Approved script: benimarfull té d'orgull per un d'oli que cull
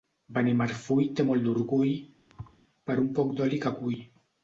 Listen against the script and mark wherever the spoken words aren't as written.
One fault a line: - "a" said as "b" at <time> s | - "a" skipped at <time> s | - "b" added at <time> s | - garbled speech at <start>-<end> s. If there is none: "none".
- "molt" added at 1.3 s
- "poc" added at 3.2 s